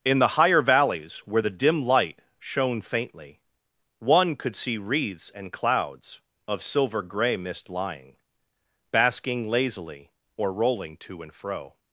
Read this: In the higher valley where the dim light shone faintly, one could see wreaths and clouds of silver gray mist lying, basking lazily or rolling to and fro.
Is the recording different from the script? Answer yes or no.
yes